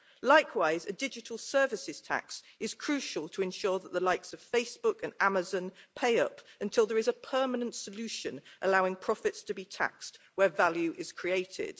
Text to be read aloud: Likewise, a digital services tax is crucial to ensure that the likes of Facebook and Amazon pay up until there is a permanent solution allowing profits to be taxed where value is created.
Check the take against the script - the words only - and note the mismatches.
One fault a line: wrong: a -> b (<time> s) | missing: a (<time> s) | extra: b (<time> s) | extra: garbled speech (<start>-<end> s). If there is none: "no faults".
no faults